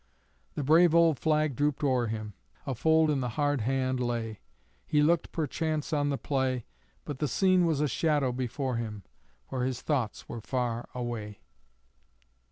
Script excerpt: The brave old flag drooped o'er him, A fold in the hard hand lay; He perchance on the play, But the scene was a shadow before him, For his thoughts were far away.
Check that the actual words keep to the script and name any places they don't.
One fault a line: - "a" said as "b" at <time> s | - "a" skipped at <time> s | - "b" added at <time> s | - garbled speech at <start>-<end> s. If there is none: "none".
- "looked" added at 5.0 s